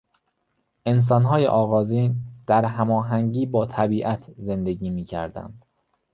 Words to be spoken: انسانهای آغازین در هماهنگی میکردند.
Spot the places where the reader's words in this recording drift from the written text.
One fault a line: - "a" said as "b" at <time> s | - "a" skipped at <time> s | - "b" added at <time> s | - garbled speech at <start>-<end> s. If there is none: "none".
- "با طبیعت زندگی" added at 3.5 s